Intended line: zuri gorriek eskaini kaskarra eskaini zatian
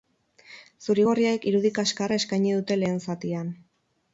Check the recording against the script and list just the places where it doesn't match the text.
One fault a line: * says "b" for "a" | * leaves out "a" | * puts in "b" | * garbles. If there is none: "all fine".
* says "irudi" for "eskaini"
* puts in "dute lehen"